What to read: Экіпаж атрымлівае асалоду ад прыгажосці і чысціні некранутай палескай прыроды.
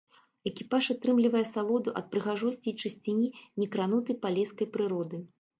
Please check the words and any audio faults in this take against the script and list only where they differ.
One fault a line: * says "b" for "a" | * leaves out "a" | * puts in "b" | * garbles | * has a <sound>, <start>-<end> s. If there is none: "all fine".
all fine